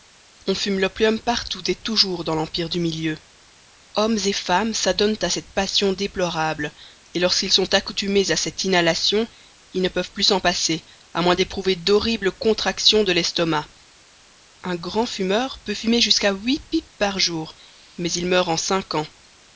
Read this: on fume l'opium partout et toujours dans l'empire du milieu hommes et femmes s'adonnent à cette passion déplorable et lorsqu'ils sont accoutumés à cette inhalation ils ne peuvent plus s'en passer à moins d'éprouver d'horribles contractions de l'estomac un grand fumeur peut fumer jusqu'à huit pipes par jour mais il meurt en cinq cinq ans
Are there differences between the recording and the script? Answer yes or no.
yes